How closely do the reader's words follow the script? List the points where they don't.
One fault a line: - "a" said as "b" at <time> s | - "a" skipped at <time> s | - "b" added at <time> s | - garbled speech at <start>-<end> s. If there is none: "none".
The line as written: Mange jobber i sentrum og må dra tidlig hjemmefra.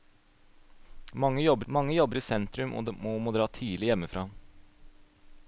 - "mange jobber" added at 1.7 s